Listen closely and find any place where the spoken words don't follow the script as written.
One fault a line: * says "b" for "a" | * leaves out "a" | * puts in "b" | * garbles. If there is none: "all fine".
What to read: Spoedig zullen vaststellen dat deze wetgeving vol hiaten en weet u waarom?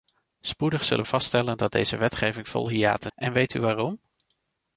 all fine